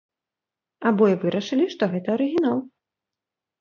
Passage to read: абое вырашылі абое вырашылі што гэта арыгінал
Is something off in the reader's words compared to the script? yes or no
yes